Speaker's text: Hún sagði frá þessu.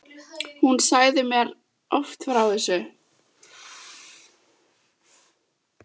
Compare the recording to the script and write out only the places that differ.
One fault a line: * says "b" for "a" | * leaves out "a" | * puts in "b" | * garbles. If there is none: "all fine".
* puts in "mér oft"